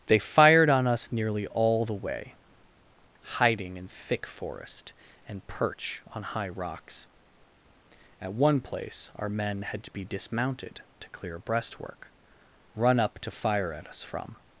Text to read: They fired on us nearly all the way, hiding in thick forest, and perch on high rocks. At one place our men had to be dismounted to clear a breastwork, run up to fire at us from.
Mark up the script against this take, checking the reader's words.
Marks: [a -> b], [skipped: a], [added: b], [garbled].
They fired on us nearly all the way, hiding in thick forest, and perch on high rocks. At one place our men had to be dismounted to clear a breastwork, run up to fire at us from.